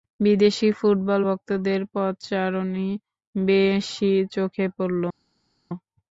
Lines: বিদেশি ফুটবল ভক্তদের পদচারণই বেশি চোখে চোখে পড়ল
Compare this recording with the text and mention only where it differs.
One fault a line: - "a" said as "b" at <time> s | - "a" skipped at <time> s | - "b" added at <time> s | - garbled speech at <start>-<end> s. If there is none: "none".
- "চোখে" skipped at 4.6 s